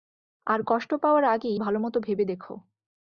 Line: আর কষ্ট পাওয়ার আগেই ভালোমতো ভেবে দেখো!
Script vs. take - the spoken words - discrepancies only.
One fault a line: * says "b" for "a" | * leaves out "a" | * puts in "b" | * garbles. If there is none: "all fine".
all fine